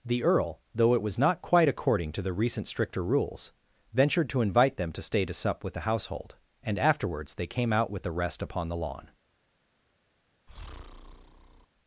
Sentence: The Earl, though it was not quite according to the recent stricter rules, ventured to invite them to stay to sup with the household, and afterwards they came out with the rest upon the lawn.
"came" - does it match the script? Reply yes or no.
yes